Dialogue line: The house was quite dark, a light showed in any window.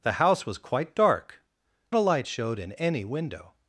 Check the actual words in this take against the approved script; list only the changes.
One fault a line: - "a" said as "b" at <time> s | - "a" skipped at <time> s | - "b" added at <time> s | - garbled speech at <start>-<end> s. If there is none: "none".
none